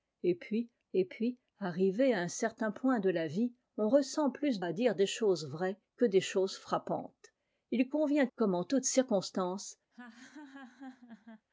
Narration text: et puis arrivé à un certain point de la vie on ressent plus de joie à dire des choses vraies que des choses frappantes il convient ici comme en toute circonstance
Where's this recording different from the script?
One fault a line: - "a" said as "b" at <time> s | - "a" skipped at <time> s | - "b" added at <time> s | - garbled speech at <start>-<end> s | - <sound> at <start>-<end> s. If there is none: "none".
- "et puis" added at 0.9 s
- "de joie" skipped at 4.6 s
- "ici" skipped at 8.3 s
- laugh at 9.9-11.5 s